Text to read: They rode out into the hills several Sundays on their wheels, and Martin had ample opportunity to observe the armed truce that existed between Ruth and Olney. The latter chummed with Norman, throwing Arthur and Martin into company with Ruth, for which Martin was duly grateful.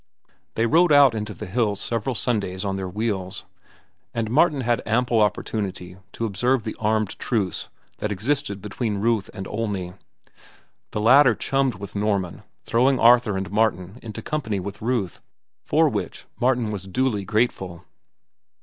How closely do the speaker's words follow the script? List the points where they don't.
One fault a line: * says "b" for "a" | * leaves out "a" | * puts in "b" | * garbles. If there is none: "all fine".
all fine